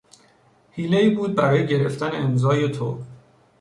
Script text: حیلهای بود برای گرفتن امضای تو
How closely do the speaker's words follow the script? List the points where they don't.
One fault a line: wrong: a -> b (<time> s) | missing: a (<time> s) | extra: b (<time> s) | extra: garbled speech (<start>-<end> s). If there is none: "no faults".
no faults